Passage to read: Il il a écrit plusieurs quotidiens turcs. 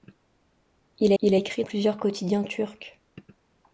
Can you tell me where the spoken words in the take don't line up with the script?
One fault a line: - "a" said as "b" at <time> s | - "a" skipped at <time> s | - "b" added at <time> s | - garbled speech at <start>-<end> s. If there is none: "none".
none